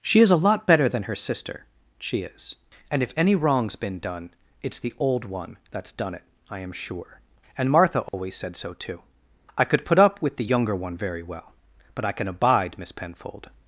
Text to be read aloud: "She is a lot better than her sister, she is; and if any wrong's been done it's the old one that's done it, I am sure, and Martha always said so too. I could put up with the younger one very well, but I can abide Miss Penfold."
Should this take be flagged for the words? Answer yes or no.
no